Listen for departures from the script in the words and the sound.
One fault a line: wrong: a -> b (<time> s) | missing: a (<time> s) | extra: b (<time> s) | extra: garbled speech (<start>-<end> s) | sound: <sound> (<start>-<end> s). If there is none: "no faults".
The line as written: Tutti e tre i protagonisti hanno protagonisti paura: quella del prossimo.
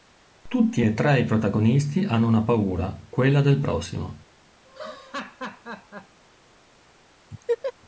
wrong: protagonisti -> una (2.3 s)
sound: laugh (4.6-6.2 s)
sound: laugh (7.3-7.7 s)